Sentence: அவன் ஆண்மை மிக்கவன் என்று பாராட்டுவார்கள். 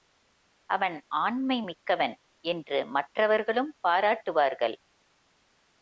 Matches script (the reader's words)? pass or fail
fail